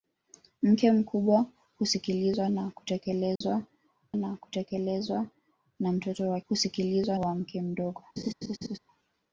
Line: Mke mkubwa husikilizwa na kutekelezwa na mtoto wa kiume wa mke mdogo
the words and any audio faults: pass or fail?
fail